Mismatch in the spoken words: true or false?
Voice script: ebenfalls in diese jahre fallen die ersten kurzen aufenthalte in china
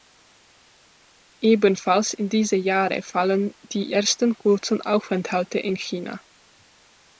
false